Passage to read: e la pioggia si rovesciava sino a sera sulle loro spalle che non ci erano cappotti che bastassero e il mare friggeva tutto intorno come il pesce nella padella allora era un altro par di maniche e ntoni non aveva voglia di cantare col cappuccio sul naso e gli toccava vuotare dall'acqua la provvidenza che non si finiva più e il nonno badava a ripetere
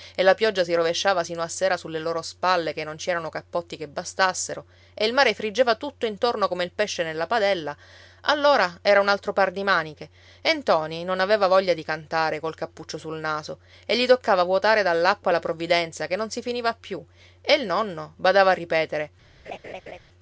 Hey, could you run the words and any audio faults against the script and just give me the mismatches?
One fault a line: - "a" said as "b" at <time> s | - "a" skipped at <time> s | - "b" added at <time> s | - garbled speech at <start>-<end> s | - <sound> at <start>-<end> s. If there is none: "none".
- laugh at 19.5-20.0 s